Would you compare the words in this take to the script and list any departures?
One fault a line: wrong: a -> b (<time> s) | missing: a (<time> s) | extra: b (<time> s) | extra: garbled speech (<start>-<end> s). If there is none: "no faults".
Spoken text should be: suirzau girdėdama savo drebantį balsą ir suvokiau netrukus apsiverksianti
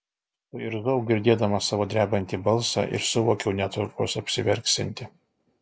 no faults